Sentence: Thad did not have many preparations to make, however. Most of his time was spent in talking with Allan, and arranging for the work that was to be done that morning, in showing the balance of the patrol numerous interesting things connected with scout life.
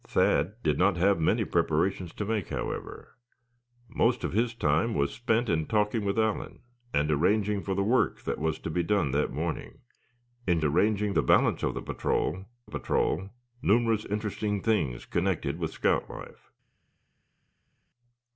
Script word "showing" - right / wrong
wrong